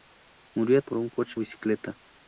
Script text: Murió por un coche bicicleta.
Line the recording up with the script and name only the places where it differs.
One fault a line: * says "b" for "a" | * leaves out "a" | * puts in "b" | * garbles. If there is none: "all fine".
all fine